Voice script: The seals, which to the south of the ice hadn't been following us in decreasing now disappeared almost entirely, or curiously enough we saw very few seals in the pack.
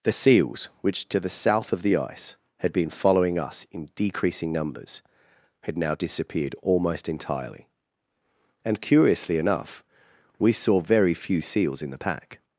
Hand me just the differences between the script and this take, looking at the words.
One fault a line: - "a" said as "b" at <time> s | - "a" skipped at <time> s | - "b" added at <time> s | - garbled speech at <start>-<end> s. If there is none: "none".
- "hadn't" said as "had" at 2.6 s
- "numbers had" added at 4.5 s
- "or" said as "and" at 8.6 s